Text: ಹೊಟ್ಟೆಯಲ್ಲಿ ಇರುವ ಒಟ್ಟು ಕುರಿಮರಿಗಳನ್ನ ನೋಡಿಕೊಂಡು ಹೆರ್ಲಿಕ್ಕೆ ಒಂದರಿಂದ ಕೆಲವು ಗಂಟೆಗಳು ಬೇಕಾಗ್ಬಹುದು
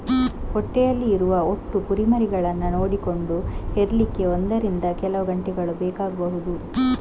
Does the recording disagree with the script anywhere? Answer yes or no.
no